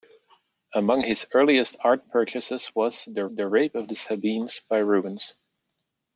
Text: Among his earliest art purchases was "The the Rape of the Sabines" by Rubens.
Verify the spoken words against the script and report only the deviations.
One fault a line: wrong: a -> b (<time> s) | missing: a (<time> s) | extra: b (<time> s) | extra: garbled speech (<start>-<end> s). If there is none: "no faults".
no faults